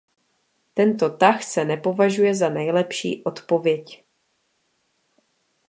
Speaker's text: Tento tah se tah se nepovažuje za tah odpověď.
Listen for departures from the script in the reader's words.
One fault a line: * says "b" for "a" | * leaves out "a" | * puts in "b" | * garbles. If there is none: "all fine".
* leaves out "tah se"
* says "nejlepší" for "tah"